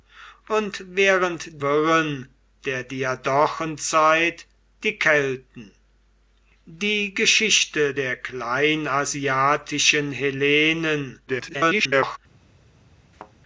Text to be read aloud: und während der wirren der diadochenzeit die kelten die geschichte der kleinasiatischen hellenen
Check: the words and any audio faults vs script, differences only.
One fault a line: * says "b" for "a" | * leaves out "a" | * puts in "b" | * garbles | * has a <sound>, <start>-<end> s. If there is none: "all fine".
* leaves out "der"
* garbles
* has a thud, 13.1-13.3 s